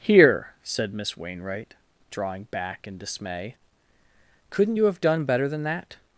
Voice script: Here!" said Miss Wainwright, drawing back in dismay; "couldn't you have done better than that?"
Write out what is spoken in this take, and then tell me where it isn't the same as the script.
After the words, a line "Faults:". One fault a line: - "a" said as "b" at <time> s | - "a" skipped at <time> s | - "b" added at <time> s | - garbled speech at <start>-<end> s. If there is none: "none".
Here!" said Miss Wainwright, drawing back in dismay; "couldn't you have done better than that?"
Faults:
none